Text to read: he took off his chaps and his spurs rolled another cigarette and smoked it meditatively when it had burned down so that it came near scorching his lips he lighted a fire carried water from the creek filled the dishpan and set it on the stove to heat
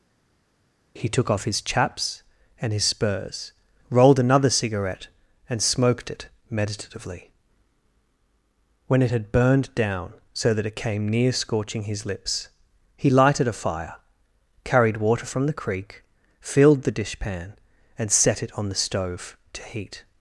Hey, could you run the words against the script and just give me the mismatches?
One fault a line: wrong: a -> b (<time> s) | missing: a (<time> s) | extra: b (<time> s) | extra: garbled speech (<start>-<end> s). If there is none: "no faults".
no faults